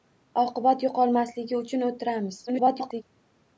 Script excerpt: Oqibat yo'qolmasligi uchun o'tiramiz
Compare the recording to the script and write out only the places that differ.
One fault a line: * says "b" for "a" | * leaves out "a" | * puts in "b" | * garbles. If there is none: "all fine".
* garbles